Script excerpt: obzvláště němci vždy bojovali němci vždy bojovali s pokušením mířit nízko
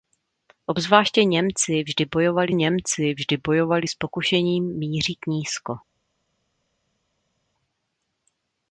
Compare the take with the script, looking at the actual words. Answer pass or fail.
pass